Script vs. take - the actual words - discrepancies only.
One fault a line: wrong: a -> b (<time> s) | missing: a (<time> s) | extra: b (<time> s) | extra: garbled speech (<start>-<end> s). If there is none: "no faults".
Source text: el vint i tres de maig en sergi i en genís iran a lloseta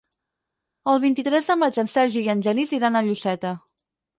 no faults